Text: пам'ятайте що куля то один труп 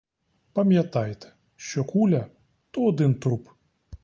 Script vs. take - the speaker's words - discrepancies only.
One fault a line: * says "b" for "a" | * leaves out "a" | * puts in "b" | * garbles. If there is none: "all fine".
all fine